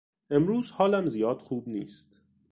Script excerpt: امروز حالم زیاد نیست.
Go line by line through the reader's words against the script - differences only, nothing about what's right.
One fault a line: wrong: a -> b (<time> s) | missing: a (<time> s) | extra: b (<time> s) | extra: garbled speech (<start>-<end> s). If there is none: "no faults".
extra: خوب (1.4 s)